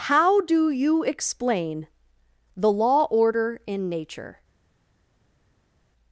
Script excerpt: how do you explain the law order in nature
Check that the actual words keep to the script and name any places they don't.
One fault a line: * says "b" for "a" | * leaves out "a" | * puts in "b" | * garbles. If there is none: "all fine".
all fine